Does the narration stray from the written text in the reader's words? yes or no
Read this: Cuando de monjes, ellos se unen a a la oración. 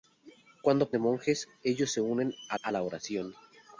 no